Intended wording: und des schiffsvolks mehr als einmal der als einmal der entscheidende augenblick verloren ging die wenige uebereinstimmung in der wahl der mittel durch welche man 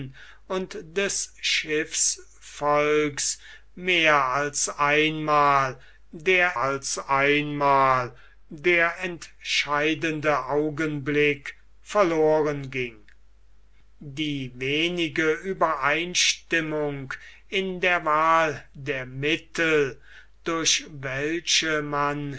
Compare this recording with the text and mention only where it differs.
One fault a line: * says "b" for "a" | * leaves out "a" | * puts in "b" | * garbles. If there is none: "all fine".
all fine